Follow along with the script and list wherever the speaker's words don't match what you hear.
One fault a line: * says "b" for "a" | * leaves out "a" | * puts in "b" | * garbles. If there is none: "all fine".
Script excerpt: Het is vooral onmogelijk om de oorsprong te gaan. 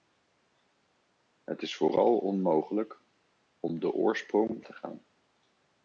all fine